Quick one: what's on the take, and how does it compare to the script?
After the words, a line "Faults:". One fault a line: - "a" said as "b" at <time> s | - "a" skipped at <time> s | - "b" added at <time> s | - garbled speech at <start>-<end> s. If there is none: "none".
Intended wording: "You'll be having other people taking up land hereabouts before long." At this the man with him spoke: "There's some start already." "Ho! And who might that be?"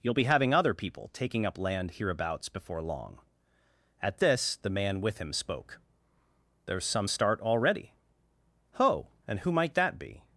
"You'll be having other people taking up land hereabouts before long." At this the man with him spoke: "There's some start already." "Ho! And who might that be?"
Faults:
none